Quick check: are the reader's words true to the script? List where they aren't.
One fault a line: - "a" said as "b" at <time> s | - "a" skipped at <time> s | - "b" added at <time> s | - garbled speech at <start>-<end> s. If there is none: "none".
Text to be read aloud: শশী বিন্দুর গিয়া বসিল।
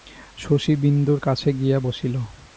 - "কাছে" added at 1.2 s